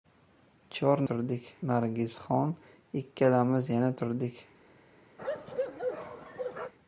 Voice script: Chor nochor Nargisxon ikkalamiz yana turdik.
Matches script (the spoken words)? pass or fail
fail